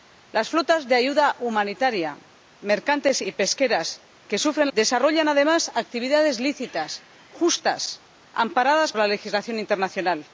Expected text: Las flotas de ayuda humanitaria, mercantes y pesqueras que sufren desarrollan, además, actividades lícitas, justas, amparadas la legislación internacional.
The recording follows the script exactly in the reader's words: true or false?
true